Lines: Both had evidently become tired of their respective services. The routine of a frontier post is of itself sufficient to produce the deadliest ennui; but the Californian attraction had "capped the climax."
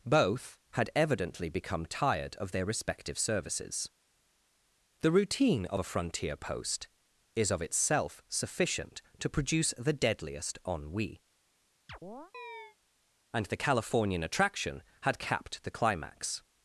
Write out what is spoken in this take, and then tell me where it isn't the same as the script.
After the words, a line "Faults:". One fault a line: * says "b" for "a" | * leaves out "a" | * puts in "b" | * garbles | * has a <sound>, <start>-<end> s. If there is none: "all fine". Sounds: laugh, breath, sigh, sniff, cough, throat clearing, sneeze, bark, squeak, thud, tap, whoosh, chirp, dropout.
Both had evidently become tired of their respective services. The routine of a frontier post is of itself sufficient to produce the deadliest ennui; and the Californian attraction had "capped the climax."
Faults:
* has a chirp, 11.9-12.8 s
* says "and" for "but"